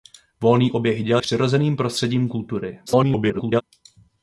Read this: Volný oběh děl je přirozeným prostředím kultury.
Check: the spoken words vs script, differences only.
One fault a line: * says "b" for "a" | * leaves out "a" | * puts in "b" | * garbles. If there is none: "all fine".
* leaves out "je"
* garbles